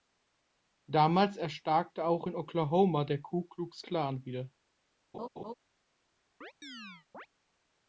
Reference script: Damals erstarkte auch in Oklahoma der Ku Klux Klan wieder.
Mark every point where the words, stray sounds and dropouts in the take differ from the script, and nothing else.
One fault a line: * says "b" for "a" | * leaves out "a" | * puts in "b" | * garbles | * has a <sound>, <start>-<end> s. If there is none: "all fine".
* has a laugh, 5.1-5.5 s
* has a chirp, 6.4-7.3 s